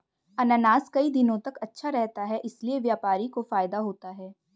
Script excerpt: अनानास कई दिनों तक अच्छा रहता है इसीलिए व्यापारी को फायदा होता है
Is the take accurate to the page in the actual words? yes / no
yes